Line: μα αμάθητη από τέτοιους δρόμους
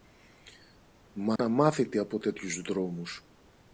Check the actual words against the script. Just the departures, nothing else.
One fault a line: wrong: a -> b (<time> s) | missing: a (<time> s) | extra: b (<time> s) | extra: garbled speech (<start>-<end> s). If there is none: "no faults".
no faults